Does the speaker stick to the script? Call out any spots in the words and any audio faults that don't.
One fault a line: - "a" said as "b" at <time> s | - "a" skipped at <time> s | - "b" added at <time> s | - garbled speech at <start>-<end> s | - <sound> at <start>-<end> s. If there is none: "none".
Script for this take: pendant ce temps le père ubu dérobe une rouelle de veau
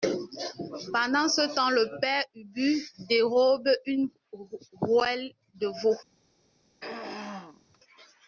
- throat clearing at 6.8-7.8 s